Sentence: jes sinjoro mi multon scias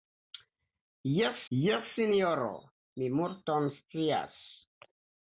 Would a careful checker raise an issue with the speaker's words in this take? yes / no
yes